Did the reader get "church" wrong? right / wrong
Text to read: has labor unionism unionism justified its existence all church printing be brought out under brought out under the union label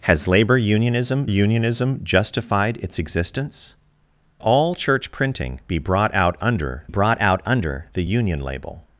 right